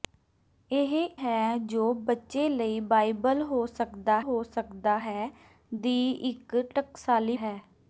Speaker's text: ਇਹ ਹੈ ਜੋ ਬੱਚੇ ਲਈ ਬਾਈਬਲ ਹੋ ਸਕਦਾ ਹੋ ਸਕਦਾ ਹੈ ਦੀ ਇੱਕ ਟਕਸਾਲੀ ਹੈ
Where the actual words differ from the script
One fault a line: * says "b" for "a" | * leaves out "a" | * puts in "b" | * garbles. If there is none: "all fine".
all fine